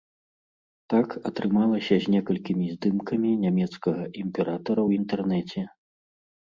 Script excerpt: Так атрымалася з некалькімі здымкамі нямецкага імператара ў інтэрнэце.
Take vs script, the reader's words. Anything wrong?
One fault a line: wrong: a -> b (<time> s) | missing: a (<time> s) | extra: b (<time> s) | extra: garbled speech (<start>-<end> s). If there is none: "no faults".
no faults